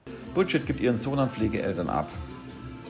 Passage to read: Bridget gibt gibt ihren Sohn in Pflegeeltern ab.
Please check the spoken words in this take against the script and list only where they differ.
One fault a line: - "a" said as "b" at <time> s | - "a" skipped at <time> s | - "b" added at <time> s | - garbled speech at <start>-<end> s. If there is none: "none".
- "gibt" skipped at 0.8 s
- "in" said as "an" at 1.2 s